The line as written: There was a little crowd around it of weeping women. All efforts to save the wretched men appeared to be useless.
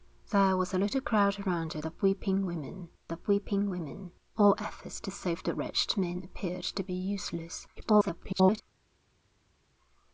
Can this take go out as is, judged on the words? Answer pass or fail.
fail